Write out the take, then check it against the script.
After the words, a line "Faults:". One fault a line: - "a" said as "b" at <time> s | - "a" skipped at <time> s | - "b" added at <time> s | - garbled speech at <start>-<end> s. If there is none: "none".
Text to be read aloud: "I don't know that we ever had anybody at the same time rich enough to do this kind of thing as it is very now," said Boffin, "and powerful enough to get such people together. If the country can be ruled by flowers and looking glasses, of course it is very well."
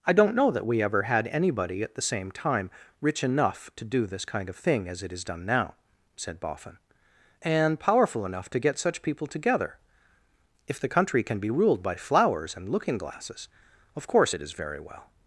"I don't know that we ever had anybody at the same time rich enough to do this kind of thing as it is done now," said Boffin, "and powerful enough to get such people together. If the country can be ruled by flowers and looking glasses, of course it is very well."
Faults:
- "very" said as "done" at 5.2 s